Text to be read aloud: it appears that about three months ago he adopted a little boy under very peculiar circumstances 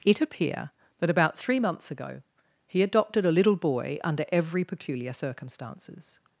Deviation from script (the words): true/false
true